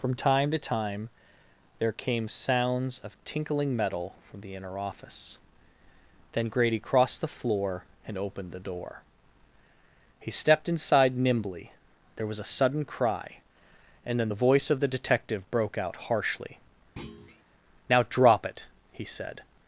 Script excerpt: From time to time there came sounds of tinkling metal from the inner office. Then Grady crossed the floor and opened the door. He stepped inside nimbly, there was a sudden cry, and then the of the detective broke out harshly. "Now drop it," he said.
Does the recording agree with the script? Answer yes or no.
no